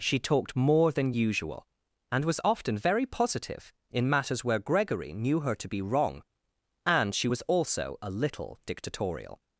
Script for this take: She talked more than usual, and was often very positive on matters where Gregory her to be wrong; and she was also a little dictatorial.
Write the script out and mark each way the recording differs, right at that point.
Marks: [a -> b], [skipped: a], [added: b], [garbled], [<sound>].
She talked more than usual, and was often very positive [on -> in] matters where Gregory [added: knew] her to be wrong; and she was also a little dictatorial.